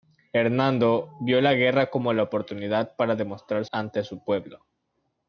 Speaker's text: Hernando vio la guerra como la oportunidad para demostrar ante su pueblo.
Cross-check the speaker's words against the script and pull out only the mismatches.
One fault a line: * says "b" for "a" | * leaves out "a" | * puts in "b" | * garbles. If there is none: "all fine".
all fine